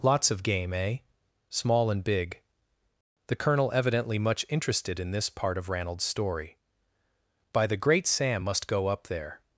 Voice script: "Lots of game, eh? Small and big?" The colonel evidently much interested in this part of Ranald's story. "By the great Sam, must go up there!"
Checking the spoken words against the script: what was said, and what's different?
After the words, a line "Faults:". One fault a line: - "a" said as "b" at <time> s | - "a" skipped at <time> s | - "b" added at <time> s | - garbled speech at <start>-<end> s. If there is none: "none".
"Lots of game, eh? Small and big?" The colonel evidently much interested in this part of Ranald's story. "By the great Sam, must go up there!"
Faults:
none